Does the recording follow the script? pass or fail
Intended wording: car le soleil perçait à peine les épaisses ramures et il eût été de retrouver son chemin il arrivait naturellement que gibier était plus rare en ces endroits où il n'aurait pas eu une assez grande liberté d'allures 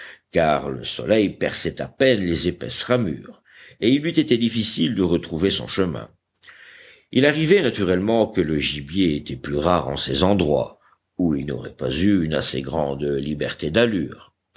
fail